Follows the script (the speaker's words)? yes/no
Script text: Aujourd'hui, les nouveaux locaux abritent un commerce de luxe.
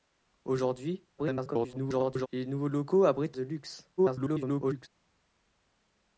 no